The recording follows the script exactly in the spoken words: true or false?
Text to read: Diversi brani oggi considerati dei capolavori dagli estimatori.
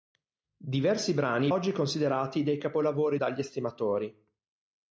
true